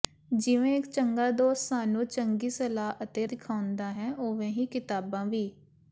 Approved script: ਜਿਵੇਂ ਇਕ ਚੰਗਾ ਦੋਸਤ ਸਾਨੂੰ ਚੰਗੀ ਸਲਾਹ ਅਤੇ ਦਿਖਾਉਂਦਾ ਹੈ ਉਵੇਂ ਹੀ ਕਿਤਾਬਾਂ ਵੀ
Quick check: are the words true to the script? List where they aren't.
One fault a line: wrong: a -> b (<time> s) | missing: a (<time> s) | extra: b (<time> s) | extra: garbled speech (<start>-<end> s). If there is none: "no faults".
no faults